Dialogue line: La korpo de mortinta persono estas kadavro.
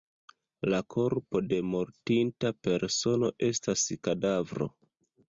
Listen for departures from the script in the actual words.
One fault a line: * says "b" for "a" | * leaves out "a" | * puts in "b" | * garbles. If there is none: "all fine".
all fine